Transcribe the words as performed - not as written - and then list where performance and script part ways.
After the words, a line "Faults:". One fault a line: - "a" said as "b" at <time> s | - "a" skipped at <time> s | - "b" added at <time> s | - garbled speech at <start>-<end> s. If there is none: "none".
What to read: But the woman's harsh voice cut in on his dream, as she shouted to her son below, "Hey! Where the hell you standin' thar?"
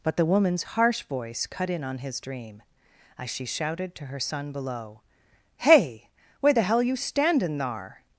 But the woman's harsh voice cut in on his dream, as she shouted to her son below, "Hey! Where the hell you standin' thar?"
Faults:
none